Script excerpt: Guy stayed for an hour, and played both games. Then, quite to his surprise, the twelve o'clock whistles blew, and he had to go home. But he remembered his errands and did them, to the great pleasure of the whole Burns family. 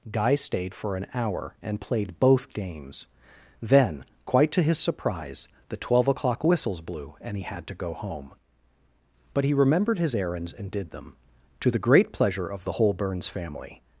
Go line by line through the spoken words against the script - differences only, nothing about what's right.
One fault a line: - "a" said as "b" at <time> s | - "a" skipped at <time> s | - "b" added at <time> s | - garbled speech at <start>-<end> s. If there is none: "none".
none